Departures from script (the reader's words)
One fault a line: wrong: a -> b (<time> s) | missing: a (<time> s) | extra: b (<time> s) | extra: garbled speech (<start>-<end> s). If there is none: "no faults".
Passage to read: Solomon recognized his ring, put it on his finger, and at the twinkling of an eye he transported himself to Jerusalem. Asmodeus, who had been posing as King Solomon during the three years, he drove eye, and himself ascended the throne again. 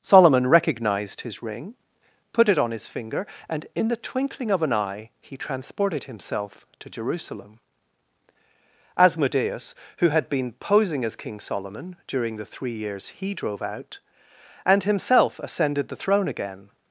wrong: at -> in (3.8 s)
wrong: eye -> out (13.6 s)